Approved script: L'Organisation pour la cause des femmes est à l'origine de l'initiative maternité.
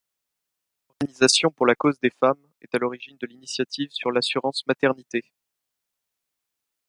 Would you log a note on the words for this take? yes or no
yes